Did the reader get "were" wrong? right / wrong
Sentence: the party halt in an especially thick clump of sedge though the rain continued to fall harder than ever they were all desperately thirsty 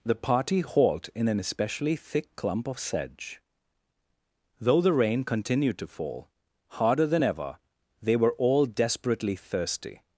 right